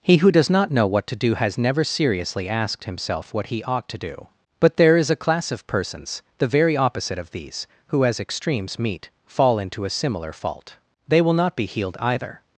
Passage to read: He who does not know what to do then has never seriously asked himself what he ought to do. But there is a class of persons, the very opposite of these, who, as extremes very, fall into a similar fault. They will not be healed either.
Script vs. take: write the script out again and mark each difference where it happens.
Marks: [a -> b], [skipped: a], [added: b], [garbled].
He who does not know what to do [skipped: then] has never seriously asked himself what he ought to do. But there is a class of persons, the very opposite of these, who, as extremes [very, -> meet] fall into a similar fault. They will not be healed either.